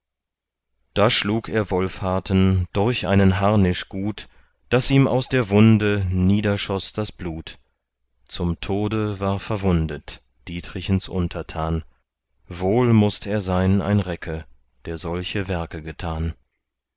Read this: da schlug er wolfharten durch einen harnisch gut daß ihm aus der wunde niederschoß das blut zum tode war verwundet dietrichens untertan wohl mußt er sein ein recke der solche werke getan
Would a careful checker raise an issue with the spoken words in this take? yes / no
no